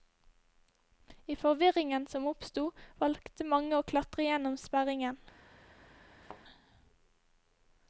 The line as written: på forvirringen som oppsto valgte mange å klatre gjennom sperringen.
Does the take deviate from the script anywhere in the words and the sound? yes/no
yes